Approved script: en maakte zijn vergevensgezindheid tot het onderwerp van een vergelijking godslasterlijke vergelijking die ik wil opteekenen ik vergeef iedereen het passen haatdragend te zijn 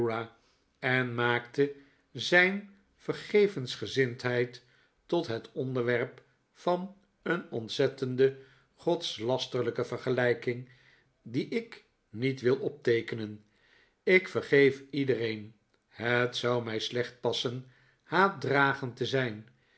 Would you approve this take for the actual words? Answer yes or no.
no